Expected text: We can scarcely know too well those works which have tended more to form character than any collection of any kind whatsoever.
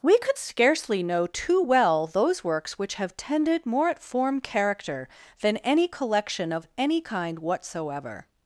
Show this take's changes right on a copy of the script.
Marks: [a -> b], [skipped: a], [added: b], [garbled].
We [can -> could] scarcely know too well those works which have tended more [to -> at] form character than any collection of any kind whatsoever.